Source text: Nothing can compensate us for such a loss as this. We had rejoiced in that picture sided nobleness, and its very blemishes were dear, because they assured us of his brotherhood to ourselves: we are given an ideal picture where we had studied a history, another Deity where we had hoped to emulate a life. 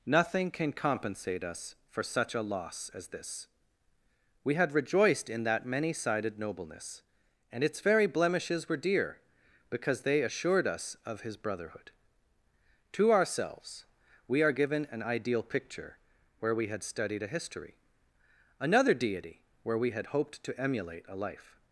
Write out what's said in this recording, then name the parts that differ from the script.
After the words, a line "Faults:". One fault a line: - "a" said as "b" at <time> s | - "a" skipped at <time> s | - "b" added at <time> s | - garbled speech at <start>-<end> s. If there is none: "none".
Nothing can compensate us for such a loss as this. We had rejoiced in that many sided nobleness, and its very blemishes were dear, because they assured us of his brotherhood to ourselves: we are given an ideal picture where we had studied a history, another Deity where we had hoped to emulate a life.
Faults:
- "picture" said as "many" at 5.7 s